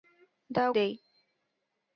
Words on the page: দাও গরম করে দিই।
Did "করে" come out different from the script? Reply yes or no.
yes